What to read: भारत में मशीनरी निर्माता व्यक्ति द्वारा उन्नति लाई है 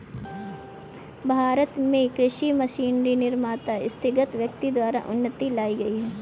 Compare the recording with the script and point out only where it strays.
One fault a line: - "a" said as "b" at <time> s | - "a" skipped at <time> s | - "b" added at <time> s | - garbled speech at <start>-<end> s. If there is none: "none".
- "कृषि" added at 2.1 s
- "स्थगित" added at 3.9 s
- "गई" added at 5.8 s